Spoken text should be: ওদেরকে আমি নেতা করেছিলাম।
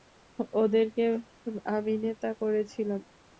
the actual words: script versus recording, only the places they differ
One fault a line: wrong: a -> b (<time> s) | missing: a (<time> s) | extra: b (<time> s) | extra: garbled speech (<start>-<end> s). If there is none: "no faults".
no faults